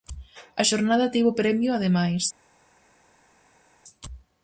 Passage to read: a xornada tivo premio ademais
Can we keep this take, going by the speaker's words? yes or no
yes